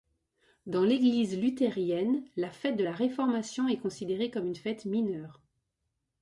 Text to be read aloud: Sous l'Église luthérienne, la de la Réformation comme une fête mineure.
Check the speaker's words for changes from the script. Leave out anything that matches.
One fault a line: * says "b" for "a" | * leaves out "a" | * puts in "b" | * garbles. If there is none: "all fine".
* says "Dans" for "Sous"
* puts in "fête"
* puts in "est considérée"